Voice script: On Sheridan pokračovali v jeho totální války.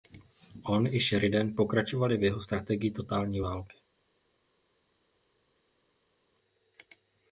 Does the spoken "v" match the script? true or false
true